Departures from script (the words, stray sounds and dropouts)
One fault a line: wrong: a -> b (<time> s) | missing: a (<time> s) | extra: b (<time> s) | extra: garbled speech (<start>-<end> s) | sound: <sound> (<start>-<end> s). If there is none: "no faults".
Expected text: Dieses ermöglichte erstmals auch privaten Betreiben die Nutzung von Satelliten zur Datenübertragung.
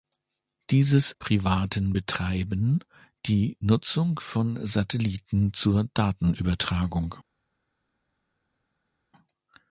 missing: ermöglichte erstmals auch (1.1 s)